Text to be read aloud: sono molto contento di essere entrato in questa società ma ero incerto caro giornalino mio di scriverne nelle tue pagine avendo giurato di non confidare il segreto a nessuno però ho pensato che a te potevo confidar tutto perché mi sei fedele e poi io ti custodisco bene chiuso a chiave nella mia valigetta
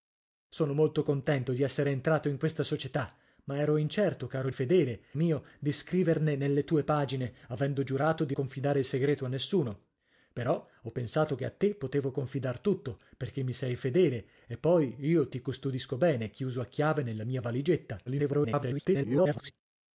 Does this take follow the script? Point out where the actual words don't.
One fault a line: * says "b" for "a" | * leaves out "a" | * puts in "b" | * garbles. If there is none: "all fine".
* says "fedele" for "giornalino"
* leaves out "non"
* garbles